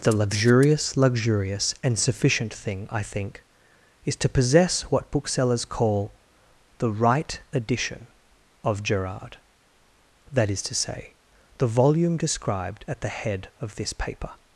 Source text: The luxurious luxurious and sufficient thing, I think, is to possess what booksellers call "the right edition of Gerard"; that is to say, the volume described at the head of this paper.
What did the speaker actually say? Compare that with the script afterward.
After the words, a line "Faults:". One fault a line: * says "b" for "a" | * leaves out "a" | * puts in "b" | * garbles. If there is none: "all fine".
The luxurious luxurious and sufficient thing, I think, is to possess what booksellers call "the right edition of Gerard"; that is to say, the volume described at the head of this paper.
Faults:
all fine